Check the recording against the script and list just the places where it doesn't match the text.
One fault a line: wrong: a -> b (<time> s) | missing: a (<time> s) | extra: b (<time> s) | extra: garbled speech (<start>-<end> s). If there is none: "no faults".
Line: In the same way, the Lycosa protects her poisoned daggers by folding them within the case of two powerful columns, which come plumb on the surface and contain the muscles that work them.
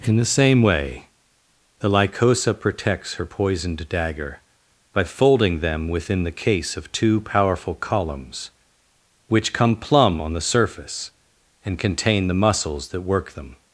wrong: daggers -> dagger (3.9 s)